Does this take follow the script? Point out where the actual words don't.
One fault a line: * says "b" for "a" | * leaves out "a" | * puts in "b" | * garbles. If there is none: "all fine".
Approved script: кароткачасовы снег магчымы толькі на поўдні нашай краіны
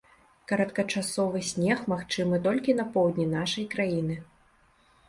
all fine